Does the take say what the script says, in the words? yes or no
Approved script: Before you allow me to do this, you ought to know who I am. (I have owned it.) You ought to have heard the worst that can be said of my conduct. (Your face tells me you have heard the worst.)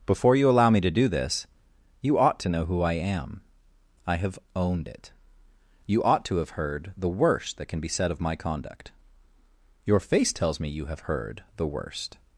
yes